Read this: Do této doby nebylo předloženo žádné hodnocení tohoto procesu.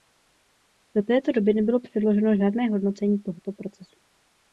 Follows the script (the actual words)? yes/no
yes